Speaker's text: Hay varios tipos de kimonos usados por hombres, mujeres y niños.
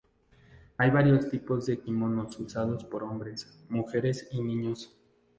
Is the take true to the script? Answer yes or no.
yes